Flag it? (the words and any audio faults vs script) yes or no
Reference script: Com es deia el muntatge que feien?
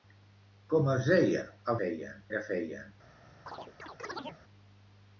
yes